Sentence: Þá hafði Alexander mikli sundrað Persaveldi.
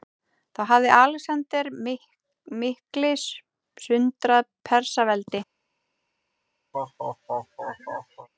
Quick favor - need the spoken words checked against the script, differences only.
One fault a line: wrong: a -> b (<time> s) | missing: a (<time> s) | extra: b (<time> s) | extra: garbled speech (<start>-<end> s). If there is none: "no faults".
no faults